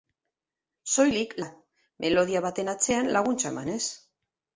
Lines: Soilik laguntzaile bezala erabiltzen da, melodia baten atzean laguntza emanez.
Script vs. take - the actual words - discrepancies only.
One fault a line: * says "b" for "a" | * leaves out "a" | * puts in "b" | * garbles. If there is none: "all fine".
* leaves out "laguntzaile bezala erabiltzen"